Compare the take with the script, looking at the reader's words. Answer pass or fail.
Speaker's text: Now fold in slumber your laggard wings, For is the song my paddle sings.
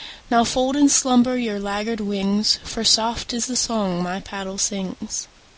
fail